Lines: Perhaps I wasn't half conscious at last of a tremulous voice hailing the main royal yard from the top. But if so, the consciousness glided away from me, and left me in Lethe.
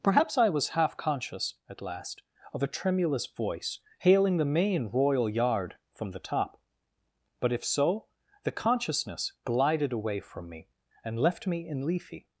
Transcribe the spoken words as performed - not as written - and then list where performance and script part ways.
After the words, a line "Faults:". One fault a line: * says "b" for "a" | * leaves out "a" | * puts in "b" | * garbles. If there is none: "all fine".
Perhaps I was half conscious at last of a tremulous voice hailing the main royal yard from the top. But if so, the consciousness glided away from me, and left me in Lethe.
Faults:
* says "was" for "wasn't"